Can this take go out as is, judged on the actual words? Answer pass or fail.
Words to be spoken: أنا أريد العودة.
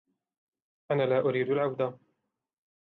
fail